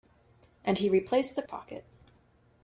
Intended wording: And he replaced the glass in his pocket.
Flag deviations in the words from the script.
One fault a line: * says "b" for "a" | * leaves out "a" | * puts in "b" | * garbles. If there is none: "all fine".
* leaves out "glass in his"